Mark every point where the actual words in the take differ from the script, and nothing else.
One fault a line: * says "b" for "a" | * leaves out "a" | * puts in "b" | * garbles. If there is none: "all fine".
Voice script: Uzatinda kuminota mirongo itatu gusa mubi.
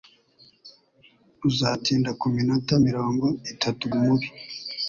* leaves out "gusa"